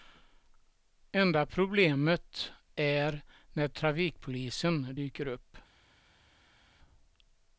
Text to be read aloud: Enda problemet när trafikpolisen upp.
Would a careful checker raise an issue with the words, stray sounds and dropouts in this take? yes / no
yes